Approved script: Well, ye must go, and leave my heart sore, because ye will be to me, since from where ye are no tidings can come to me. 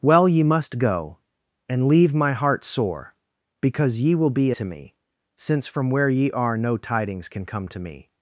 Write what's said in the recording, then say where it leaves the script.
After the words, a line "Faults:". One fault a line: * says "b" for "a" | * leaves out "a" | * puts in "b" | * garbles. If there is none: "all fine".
Well, ye must go, and leave my heart sore, because ye will be to me, since from where ye are no tidings can come to me.
Faults:
all fine